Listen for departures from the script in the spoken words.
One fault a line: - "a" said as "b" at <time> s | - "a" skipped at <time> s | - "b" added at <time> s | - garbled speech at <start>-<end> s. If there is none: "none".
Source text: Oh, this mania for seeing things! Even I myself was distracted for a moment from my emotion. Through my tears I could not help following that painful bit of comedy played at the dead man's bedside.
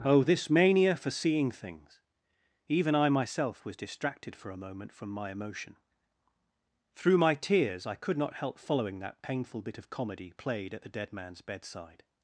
none